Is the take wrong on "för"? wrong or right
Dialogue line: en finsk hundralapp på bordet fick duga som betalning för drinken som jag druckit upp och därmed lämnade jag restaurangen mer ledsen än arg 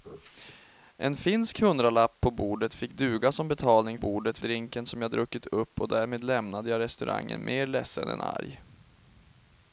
wrong